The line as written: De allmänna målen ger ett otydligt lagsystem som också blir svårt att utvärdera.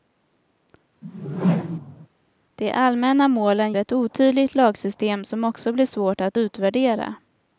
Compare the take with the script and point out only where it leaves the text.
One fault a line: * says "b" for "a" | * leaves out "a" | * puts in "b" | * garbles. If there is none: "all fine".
* leaves out "ger"